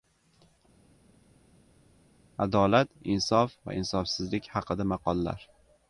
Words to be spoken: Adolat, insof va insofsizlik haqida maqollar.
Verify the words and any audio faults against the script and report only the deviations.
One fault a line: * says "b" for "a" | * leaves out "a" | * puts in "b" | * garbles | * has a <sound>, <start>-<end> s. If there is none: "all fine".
all fine